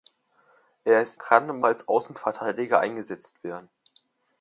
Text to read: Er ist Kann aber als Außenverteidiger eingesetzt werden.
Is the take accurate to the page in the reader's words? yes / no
yes